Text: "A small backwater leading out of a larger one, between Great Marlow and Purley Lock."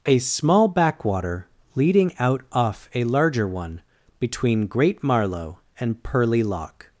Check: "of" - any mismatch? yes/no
yes